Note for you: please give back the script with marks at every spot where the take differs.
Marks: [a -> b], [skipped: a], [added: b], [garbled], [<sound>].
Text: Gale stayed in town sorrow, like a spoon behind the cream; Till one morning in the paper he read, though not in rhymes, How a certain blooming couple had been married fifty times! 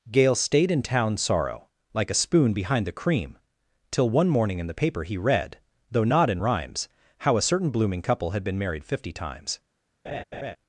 Gale stayed in town sorrow, like a spoon behind the cream; Till one morning in the paper he read, though not in rhymes, How a certain blooming couple had been married fifty times! [laugh]